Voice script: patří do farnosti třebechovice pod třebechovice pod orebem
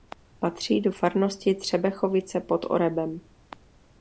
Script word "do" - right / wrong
right